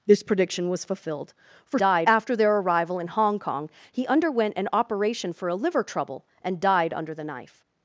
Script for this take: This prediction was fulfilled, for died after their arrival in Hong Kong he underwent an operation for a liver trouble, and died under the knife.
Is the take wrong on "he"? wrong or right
right